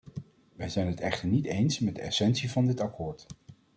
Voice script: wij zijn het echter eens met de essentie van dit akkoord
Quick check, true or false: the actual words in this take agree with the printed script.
false